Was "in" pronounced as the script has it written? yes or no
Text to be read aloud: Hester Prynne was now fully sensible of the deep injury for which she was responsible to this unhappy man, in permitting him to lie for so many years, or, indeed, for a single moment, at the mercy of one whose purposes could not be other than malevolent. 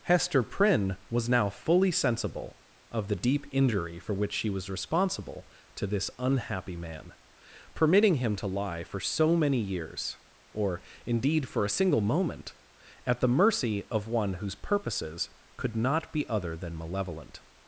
no